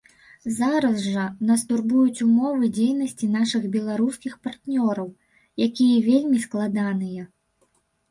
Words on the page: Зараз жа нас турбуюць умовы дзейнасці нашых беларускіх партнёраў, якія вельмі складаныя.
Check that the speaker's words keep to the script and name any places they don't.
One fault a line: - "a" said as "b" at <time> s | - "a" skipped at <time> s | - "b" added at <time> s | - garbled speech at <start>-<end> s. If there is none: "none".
none